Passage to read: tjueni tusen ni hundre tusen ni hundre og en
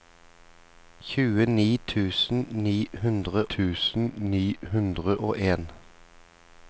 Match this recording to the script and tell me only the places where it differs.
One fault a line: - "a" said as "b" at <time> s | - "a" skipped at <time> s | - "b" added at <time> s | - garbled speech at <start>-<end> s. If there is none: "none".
none